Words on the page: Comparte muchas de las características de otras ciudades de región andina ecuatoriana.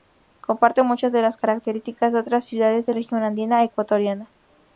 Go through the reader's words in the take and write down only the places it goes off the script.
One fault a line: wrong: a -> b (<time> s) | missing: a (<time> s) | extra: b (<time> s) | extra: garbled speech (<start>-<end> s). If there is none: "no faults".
no faults